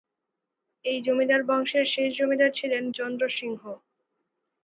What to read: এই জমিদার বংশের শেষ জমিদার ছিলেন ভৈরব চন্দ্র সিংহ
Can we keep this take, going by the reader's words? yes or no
no